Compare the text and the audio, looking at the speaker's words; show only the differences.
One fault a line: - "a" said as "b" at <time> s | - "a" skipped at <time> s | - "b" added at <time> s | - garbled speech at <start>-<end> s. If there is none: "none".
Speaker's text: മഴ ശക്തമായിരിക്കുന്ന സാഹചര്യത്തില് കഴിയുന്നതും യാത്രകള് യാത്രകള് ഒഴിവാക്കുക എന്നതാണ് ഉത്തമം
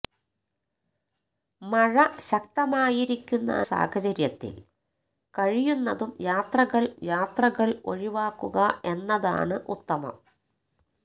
none